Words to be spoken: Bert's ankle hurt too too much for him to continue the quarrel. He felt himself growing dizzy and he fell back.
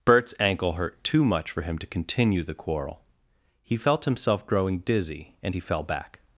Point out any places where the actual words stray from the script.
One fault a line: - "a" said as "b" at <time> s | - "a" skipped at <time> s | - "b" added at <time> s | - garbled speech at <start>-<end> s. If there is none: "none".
- "too" skipped at 1.2 s